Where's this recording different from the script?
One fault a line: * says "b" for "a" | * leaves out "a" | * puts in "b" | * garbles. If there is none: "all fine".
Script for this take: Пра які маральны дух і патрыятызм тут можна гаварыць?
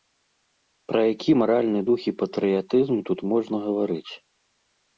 all fine